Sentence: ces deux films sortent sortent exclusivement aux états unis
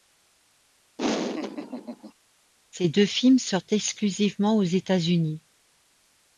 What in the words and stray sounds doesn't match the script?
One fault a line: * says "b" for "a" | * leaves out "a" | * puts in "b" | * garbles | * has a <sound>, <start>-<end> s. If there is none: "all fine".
* has a laugh, 1.0-2.1 s
* leaves out "sortent"